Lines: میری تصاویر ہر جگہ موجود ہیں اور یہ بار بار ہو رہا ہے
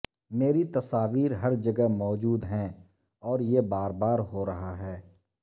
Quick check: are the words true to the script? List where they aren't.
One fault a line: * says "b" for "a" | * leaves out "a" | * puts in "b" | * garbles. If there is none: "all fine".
all fine